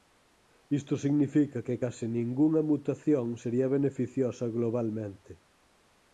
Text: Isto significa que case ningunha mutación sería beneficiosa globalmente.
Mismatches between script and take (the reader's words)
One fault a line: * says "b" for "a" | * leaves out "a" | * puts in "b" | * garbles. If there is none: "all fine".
all fine